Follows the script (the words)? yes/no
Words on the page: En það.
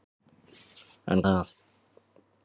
yes